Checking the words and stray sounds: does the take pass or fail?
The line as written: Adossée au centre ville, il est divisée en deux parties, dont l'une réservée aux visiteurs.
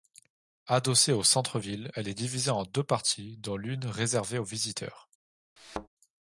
fail